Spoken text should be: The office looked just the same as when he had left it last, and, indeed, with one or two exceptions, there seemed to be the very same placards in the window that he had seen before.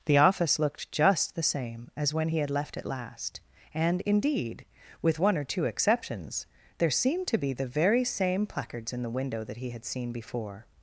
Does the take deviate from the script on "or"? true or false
false